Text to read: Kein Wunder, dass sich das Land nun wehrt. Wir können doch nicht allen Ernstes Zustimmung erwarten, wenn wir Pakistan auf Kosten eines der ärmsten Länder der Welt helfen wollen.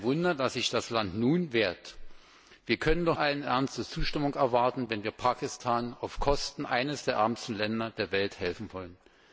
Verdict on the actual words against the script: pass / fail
fail